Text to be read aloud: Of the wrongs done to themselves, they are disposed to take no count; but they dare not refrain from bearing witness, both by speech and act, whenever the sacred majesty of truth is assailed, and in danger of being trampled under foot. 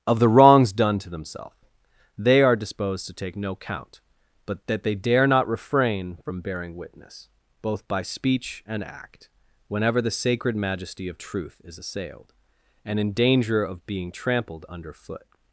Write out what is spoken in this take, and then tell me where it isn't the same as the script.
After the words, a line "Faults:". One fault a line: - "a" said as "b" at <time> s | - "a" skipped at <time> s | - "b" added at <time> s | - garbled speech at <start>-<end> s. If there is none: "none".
Of the wrongs done to themselves, they are disposed to take no count; but that they dare not refrain from bearing witness, both by speech and act, whenever the sacred majesty of truth is assailed, and in danger of being trampled under foot.
Faults:
- "that" added at 4.7 s